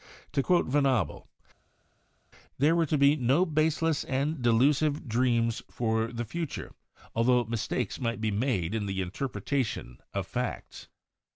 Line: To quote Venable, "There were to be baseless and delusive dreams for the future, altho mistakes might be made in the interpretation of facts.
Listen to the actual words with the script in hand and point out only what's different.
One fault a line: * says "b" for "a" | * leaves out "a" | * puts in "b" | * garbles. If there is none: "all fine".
* puts in "no"